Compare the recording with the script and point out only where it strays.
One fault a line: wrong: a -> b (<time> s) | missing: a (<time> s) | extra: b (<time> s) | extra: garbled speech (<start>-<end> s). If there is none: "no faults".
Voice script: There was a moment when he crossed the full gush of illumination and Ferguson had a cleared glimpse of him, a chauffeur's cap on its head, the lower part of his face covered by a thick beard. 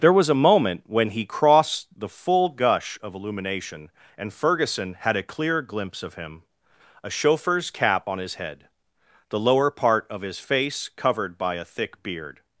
wrong: cleared -> clear (5.2 s)
wrong: its -> his (8.2 s)